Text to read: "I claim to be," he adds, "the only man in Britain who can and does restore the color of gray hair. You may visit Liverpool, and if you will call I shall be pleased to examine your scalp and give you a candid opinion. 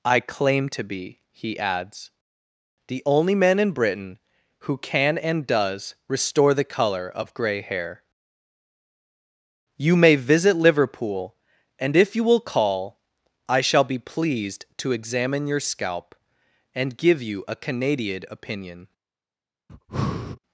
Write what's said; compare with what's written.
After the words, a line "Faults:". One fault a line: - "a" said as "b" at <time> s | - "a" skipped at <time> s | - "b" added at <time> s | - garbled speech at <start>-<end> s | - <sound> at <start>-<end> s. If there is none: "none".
"I claim to be," he adds, "the only man in Britain who can and does restore the color of gray hair. You may visit Liverpool, and if you will call I shall be pleased to examine your scalp and give you a canadian opinion.
Faults:
- "candid" said as "canadian" at 17.6 s
- breath at 19.7-20.4 s